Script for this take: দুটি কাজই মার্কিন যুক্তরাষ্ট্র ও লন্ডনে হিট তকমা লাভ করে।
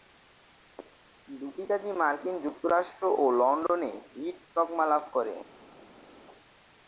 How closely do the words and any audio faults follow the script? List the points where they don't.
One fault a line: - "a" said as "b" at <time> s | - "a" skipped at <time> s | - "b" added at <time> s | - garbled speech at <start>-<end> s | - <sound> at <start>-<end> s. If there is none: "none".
none